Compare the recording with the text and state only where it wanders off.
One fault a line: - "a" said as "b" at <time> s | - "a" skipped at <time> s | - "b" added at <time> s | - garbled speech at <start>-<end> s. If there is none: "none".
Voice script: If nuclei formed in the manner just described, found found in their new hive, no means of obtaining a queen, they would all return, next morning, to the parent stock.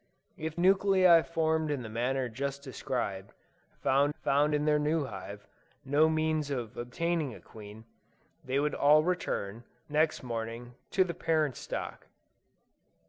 none